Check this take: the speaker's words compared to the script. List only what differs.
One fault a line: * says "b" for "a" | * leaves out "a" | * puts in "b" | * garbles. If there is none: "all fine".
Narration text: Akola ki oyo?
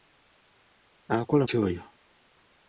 all fine